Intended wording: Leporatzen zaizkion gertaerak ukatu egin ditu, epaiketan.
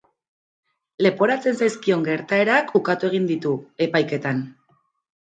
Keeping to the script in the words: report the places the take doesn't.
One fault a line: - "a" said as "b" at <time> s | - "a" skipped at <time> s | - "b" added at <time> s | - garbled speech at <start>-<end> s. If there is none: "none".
none